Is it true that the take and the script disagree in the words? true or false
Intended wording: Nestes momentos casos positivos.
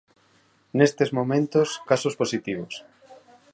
false